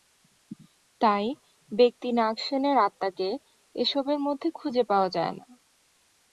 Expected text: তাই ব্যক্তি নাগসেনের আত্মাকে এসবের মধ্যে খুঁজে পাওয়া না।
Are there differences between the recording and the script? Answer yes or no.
yes